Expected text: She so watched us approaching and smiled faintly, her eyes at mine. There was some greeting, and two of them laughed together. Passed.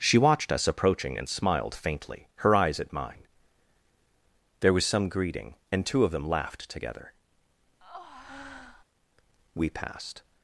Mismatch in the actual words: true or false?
true